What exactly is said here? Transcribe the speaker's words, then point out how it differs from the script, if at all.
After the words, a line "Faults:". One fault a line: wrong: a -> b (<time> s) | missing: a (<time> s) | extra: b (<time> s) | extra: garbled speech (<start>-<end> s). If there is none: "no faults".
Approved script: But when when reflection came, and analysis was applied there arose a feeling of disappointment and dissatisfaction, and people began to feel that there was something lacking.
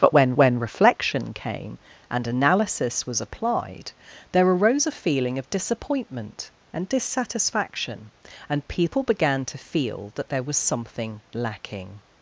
But when when reflection came, and analysis was applied there arose a feeling of disappointment and dissatisfaction, and people began to feel that there was something lacking.
Faults:
no faults